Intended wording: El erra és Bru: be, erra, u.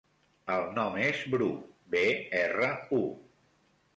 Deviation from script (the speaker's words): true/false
true